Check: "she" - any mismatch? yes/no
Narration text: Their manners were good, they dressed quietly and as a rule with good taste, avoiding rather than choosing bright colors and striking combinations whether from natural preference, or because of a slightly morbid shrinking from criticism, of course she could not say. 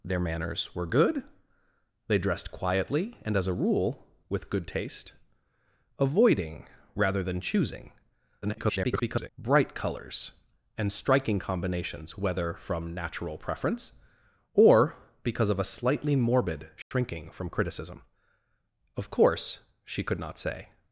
no